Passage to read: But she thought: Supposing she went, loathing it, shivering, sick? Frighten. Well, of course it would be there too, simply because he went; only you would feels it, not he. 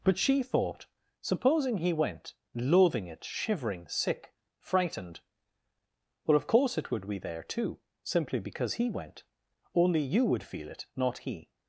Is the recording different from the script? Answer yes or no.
yes